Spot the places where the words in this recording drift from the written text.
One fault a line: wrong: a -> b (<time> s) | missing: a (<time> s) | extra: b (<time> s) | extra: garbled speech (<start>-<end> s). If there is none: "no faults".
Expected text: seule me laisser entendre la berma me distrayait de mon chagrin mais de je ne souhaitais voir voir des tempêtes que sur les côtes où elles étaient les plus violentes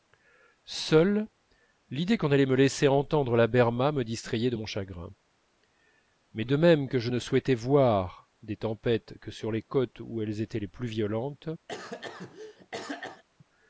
extra: l'idée qu'on allait (1.9 s)
extra: même que (6.6 s)
missing: voir (8.3 s)